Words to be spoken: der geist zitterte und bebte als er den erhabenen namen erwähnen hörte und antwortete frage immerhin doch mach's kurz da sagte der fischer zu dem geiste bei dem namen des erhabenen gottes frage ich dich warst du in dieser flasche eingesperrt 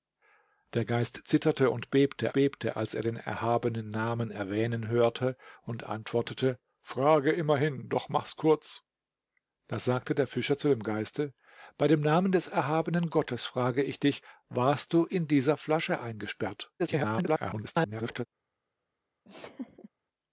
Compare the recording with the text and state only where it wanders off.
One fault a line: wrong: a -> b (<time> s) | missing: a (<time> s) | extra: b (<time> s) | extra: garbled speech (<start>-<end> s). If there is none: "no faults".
extra: bebte (2.3 s)
extra: garbled speech (16.8-18.3 s)